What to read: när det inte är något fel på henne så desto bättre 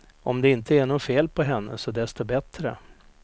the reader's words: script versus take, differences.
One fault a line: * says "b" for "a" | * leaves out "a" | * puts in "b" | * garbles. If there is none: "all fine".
* says "om" for "när"